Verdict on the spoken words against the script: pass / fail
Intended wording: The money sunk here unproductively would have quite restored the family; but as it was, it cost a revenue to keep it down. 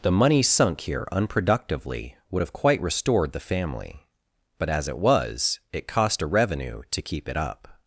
fail